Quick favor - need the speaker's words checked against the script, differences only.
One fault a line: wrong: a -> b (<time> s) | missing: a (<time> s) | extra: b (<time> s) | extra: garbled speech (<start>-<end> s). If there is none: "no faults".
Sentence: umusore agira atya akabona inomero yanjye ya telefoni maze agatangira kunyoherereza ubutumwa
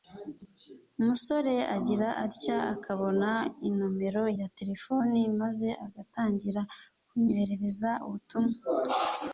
missing: yanjye (4.2 s)